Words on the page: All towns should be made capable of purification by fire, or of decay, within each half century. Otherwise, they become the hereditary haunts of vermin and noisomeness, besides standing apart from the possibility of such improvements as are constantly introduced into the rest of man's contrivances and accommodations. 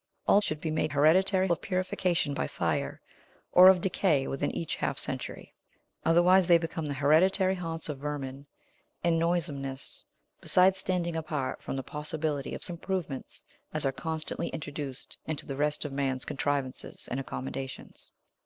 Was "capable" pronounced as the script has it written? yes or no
no